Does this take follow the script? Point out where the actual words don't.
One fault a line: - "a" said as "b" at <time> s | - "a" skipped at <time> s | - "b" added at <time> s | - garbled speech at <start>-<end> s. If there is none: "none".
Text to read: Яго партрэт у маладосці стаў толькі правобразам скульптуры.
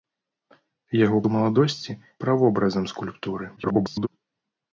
- "партрэт" skipped at 1.2 s
- "стаў толькі" skipped at 2.0 s
- garbled speech at 3.6-4.1 s